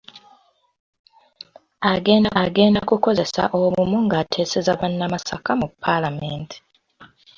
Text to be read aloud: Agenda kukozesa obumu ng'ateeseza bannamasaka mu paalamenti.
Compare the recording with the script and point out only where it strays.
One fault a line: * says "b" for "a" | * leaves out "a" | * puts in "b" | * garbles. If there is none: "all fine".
* puts in "agenda"